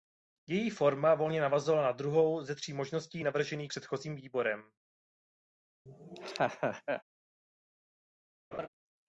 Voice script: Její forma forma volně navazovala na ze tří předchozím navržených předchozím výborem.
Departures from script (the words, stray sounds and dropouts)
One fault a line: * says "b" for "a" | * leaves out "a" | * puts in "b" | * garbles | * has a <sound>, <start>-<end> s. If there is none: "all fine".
* leaves out "forma"
* puts in "druhou"
* says "možností" for "předchozím"
* has a laugh, 5.9-7.0 s
* has a laugh, 8.5-8.7 s